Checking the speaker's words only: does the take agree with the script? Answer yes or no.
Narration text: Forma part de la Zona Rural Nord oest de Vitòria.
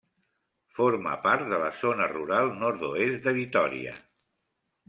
yes